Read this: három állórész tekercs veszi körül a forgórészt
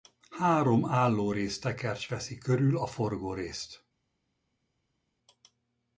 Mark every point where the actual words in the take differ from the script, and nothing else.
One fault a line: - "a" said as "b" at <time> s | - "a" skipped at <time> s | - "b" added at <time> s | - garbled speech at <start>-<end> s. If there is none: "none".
none